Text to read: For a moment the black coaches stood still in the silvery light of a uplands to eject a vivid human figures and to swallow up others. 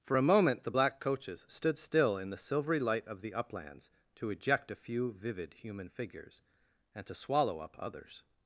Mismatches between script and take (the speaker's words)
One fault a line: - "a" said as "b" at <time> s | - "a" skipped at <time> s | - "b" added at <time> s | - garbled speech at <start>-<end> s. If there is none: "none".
- "a" said as "the" at 3.2 s
- "few" added at 4.7 s